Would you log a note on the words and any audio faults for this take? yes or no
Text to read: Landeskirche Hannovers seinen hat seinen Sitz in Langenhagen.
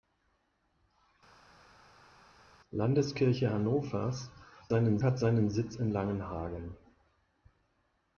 no